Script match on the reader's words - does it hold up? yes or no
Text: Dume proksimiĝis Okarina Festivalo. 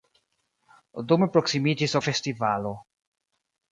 no